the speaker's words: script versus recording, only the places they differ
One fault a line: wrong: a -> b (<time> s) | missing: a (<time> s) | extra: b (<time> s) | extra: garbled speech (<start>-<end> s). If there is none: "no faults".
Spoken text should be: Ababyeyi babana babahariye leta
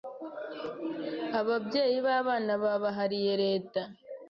no faults